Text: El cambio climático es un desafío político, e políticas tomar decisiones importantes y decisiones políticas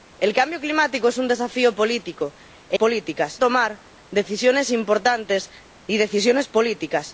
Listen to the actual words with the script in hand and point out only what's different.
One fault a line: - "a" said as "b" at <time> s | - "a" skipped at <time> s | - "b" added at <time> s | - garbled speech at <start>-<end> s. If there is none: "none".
none